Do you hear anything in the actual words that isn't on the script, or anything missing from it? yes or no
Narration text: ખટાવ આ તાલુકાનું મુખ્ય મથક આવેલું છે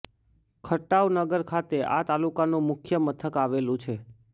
yes